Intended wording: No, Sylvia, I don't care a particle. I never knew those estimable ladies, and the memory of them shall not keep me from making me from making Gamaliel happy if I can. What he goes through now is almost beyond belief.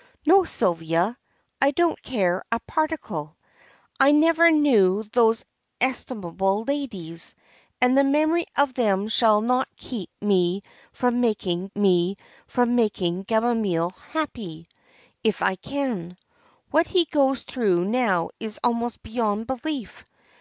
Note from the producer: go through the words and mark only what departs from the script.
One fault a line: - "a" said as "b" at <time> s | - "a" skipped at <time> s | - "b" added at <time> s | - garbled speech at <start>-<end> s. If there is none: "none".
none